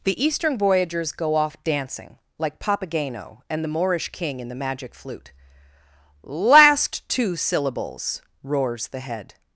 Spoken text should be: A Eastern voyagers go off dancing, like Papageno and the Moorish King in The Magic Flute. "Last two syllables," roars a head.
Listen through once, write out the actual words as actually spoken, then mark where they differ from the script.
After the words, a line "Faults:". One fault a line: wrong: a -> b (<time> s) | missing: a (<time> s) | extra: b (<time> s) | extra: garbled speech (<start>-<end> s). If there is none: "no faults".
The Eastern voyagers go off dancing, like Papageno and the Moorish King in The Magic Flute. "Last two syllables," roars the head.
Faults:
wrong: A -> The (0.0 s)
wrong: a -> the (8.9 s)